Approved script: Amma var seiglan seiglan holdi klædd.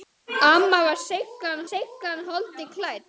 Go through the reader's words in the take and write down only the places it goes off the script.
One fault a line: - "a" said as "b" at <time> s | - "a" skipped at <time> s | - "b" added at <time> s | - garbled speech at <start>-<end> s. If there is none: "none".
none